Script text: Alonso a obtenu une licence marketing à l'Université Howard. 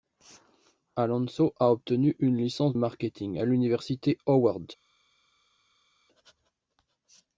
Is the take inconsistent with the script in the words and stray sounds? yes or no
no